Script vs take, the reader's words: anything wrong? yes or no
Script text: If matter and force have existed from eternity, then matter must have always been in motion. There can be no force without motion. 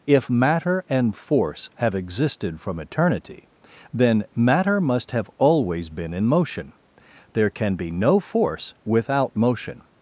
no